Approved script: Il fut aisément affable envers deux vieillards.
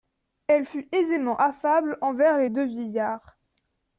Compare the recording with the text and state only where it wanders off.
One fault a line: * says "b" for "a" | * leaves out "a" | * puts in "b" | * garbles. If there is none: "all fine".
* says "Elle" for "Il"
* puts in "les"